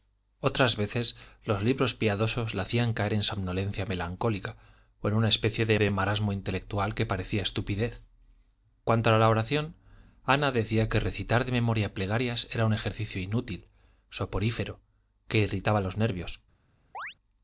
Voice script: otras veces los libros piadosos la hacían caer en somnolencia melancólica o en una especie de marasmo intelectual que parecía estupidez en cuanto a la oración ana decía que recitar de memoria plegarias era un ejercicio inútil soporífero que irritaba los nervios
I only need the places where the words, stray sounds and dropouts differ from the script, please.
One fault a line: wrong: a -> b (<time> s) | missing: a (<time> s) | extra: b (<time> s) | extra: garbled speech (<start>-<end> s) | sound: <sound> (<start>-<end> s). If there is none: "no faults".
extra: de (5.8 s)
missing: en (8.0 s)
sound: chirp (16.9-17.2 s)